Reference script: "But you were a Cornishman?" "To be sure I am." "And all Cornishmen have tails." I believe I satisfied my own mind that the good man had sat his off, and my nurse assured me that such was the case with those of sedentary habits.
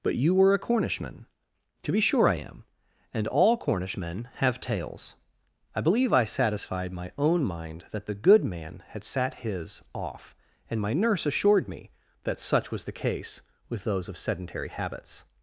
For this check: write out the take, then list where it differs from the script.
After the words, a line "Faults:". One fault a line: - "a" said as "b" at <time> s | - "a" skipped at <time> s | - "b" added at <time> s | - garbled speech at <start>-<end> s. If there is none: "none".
"But you were a Cornishman?" "To be sure I am." "And all Cornishmen have tails." I believe I satisfied my own mind that the good man had sat his off, and my nurse assured me that such was the case with those of sedentary habits.
Faults:
none